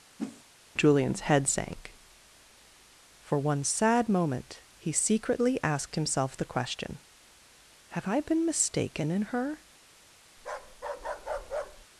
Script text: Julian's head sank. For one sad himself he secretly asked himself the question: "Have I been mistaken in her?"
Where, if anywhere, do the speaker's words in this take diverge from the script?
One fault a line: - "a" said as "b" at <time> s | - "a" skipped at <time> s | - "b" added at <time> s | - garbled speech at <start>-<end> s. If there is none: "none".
- "himself" said as "moment" at 4.1 s